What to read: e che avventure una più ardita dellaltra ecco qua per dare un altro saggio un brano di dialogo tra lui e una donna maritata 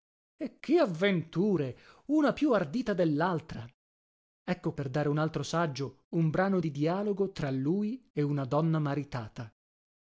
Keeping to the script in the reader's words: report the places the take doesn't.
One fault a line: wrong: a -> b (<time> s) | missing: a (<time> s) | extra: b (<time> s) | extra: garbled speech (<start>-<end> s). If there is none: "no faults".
missing: qua (4.7 s)